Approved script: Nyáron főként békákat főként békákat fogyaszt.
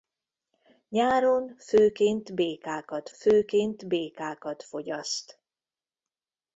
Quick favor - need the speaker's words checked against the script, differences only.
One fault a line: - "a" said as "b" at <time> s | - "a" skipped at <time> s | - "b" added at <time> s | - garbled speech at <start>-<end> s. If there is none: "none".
none